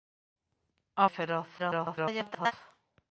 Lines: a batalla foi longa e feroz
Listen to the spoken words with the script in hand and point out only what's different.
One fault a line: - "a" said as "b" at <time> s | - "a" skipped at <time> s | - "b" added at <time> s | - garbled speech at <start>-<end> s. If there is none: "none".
- "batalla foi longa" skipped at 1.1 s
- garbled speech at 1.6-2.5 s